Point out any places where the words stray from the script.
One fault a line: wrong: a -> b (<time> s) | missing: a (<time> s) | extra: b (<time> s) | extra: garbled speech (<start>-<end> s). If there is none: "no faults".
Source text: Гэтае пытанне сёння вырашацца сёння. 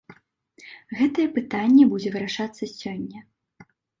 wrong: сёння -> будзе (1.9 s)